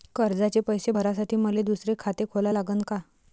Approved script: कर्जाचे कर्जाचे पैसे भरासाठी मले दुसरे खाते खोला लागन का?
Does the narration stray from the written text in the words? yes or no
yes